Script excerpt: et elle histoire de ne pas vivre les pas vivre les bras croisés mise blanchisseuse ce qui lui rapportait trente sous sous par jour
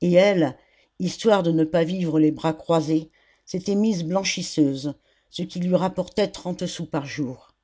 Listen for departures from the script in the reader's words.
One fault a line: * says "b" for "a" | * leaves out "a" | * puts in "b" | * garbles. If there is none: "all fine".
* leaves out "pas vivre les"
* puts in "s'était"
* leaves out "sous"